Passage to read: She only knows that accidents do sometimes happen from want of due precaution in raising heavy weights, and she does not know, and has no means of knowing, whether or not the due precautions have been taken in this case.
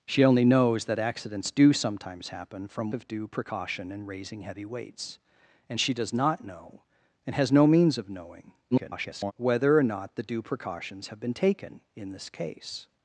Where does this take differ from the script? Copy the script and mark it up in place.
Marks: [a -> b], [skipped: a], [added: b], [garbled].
She only knows that accidents do sometimes happen from [skipped: want] of due precaution in raising heavy weights, and she does not know, and has no means of knowing, [garbled] whether or not the due precautions have been taken in this case.